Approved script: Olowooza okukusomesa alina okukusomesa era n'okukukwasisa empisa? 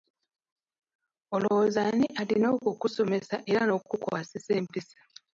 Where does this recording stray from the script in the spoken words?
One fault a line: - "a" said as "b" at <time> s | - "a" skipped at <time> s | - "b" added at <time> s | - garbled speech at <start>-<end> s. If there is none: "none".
- "okukusomesa" said as "ani" at 1.9 s